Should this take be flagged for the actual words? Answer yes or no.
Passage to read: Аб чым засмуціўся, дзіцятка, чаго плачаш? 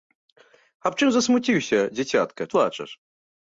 yes